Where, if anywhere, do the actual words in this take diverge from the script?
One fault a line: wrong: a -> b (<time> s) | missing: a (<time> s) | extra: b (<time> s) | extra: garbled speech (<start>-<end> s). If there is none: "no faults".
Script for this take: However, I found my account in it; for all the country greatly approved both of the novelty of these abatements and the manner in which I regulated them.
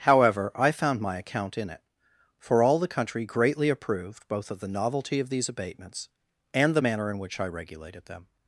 no faults